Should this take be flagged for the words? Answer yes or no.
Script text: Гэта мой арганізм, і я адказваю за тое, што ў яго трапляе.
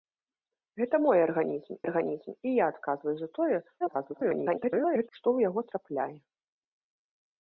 yes